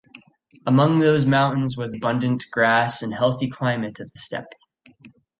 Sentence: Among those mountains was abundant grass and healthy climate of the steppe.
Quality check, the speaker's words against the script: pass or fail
pass